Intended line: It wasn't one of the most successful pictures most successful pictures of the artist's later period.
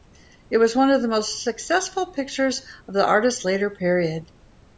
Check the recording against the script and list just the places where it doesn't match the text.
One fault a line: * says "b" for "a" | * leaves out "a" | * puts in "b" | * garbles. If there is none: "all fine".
* says "was" for "wasn't"
* leaves out "most successful pictures"